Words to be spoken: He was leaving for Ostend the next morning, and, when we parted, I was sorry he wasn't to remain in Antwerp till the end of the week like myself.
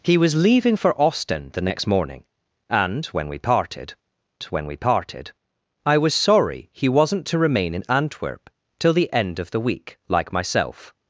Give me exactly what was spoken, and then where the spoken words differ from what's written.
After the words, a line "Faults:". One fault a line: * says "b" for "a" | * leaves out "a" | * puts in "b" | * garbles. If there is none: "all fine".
He was leaving for Ostend the next morning, and, when we parted when we parted, I was sorry he wasn't to remain in Antwerp till the end of the week like myself.
Faults:
* puts in "when we parted"